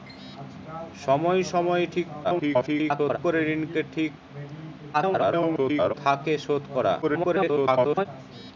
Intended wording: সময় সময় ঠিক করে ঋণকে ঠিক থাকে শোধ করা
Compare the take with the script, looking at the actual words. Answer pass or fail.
fail